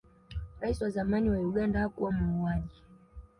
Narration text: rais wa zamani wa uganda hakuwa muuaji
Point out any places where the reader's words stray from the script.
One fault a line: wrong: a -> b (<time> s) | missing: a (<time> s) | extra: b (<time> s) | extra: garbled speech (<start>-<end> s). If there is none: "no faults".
no faults